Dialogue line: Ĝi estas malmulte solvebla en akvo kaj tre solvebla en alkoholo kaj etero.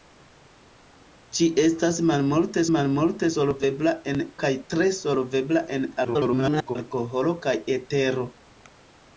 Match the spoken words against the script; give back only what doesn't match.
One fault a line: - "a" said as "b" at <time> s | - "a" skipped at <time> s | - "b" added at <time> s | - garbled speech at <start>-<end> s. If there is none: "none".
- "malmulte" added at 2.8 s
- "akvo" skipped at 4.2 s
- garbled speech at 6.0-6.8 s